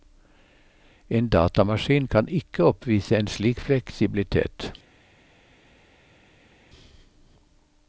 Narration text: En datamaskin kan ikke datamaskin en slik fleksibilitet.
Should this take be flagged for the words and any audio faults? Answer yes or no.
yes